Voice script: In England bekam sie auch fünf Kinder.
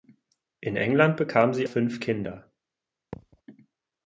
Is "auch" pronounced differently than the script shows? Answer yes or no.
yes